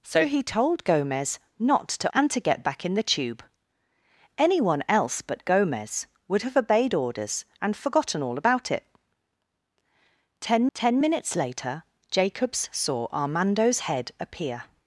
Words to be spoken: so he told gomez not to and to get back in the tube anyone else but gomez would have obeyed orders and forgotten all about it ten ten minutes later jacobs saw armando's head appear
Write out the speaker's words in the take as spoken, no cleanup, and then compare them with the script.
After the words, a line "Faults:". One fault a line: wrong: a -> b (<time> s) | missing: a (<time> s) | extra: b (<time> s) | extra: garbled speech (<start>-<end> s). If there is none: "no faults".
so he told gomez not to and to get back in the tube anyone else but gomez would have obeyed orders and forgotten all about it ten ten minutes later jacobs saw armando's head appear
Faults:
no faults